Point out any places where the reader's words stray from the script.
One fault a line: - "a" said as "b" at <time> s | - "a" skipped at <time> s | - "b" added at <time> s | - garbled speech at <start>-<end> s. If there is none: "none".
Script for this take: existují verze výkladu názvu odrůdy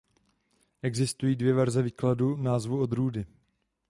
- "dvě" added at 1.4 s